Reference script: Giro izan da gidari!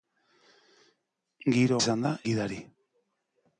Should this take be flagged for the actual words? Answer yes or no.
no